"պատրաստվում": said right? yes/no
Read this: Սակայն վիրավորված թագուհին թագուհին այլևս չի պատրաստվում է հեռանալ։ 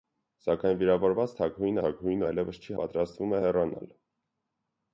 yes